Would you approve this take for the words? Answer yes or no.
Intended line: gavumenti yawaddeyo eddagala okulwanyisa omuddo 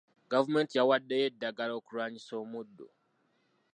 yes